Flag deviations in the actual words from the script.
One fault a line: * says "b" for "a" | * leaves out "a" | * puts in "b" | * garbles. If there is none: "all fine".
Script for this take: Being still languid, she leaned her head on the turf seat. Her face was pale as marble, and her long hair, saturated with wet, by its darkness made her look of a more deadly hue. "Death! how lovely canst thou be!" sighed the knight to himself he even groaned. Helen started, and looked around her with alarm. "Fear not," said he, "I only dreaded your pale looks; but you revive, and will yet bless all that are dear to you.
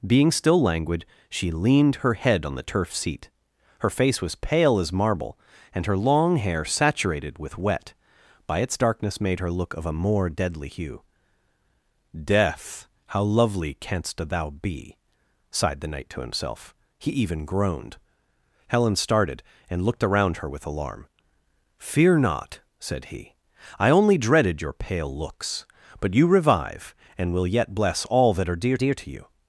* puts in "dear"